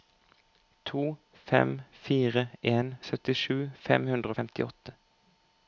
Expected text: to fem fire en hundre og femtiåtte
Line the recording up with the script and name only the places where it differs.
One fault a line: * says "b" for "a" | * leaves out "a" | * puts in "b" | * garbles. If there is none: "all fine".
* puts in "syttisju fem"